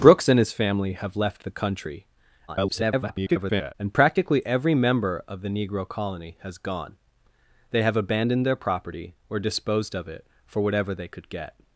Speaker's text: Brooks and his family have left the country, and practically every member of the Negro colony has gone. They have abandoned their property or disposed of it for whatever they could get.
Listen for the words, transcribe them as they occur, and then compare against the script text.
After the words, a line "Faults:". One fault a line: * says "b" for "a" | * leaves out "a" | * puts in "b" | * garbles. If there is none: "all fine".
Brooks and his family have left the country, [garbled] and practically every member of the Negro colony has gone. They have abandoned their property or disposed of it for whatever they could get.
Faults:
* garbles